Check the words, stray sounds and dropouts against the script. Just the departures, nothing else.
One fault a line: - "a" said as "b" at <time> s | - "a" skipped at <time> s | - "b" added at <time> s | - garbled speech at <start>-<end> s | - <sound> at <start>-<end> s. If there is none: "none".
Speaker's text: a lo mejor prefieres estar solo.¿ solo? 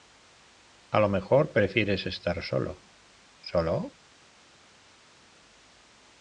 none